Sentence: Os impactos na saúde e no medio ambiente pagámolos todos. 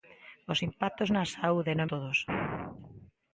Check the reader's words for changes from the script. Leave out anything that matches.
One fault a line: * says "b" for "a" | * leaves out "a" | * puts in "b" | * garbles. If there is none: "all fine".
* leaves out "medio ambiente pagámolos"